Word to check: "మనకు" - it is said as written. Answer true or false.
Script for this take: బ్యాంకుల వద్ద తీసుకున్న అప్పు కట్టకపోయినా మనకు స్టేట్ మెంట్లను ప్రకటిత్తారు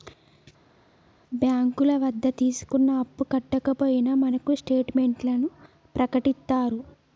true